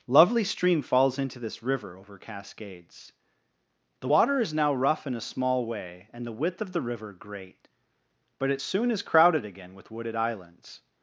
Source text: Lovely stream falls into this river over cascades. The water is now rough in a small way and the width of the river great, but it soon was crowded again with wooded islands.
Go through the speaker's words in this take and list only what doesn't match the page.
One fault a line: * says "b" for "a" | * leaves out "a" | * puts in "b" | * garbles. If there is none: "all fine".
* says "is" for "was"